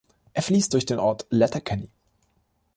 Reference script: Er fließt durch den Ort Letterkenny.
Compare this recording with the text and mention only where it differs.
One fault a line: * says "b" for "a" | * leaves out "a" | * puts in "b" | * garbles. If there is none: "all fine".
all fine